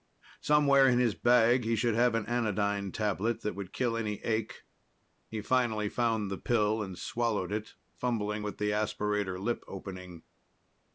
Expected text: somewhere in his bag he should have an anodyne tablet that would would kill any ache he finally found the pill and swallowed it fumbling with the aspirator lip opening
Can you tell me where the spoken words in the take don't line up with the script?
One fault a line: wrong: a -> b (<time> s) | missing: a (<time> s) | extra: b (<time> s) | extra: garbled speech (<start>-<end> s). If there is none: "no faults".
missing: would (3.7 s)